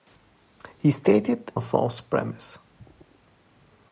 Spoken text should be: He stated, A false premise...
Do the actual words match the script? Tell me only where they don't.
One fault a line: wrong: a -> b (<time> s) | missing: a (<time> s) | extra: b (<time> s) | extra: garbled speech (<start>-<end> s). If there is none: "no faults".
no faults